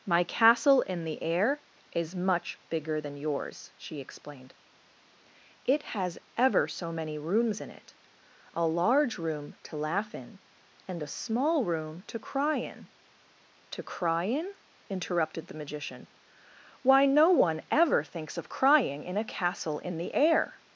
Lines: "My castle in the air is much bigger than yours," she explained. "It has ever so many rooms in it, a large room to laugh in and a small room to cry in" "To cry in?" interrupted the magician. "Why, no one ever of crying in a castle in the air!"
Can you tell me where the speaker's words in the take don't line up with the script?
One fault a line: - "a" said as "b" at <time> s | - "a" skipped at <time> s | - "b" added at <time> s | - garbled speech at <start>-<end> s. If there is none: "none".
- "thinks" added at 18.0 s